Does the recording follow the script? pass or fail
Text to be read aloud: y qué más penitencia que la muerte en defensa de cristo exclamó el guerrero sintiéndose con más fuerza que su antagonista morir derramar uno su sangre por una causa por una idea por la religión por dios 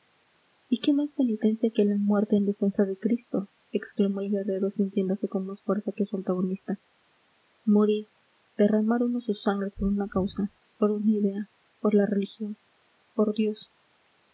pass